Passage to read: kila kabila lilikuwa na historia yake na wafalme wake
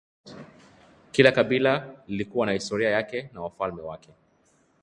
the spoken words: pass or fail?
pass